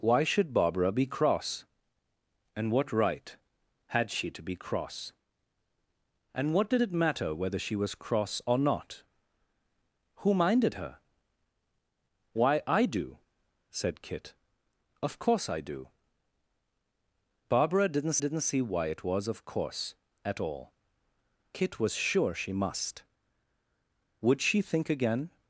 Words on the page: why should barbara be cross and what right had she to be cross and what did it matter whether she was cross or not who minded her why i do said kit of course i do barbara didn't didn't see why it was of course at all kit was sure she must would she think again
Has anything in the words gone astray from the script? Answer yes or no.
no